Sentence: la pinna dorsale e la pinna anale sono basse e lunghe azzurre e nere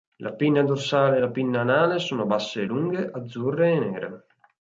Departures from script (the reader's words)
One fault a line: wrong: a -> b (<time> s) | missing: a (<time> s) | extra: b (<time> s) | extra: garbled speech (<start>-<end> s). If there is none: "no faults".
no faults